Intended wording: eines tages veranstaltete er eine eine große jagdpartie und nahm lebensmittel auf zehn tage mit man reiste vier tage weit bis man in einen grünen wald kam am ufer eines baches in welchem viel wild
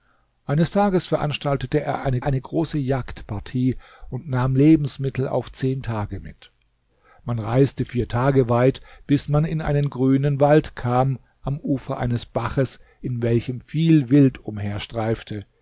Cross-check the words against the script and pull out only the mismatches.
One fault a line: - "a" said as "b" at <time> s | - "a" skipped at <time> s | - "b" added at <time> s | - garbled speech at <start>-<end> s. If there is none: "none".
none